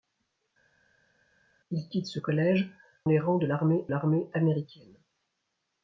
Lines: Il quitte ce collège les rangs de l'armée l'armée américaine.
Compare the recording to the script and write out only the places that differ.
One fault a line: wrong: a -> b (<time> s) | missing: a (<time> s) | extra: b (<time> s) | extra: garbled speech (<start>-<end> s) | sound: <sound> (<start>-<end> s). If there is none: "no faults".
no faults